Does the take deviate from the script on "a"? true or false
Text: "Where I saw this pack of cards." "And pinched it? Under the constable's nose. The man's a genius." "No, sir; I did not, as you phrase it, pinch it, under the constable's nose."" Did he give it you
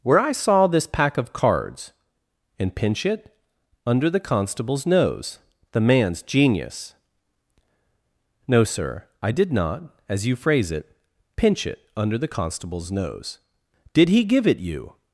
true